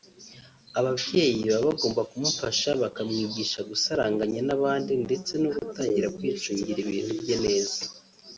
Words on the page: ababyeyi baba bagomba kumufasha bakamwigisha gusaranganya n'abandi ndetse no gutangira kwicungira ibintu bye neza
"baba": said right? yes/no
yes